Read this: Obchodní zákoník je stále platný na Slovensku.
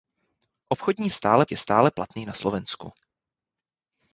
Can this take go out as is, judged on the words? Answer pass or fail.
fail